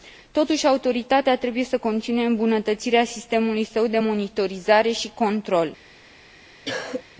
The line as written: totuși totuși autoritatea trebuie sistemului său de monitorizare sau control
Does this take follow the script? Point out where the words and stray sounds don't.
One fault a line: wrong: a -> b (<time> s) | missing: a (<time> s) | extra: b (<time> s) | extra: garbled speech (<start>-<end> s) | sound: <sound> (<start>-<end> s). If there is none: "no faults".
missing: totuși (0.7 s)
extra: să continue îmbunătățirea (1.6 s)
wrong: sau -> și (4.9 s)
sound: cough (6.6-7.0 s)